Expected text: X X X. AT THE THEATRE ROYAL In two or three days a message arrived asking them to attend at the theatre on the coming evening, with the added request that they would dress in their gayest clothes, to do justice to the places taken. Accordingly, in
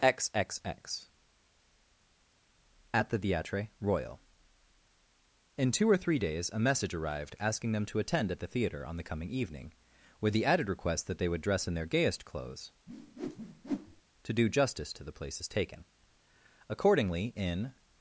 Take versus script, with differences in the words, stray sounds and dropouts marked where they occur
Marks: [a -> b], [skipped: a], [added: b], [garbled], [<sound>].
X X X. AT THE THEATRE ROYAL In two or three days a message arrived asking them to attend at the theatre on the coming evening, with the added request that they would dress in their gayest clothes, [whoosh] to do justice to the places taken. Accordingly, in